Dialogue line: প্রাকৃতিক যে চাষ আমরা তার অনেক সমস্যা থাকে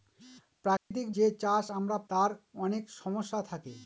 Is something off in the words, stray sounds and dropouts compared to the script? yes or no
yes